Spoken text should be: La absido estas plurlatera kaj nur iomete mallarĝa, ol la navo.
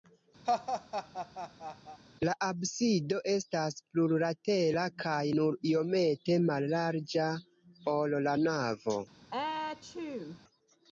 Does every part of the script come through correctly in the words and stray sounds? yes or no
no